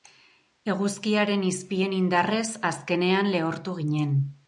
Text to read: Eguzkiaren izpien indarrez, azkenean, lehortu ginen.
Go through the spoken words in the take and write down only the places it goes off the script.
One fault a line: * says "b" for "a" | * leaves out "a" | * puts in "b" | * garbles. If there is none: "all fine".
all fine